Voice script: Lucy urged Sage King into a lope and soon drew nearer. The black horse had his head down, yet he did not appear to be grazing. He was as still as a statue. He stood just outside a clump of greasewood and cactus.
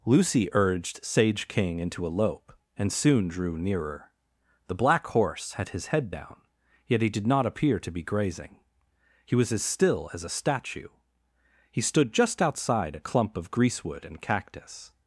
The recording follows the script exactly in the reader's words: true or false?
true